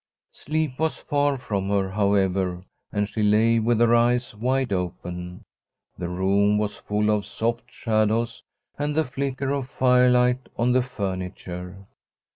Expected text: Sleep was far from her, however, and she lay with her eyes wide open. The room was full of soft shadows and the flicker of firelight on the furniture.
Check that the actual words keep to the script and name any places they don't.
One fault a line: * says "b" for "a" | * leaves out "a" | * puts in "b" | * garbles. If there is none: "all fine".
all fine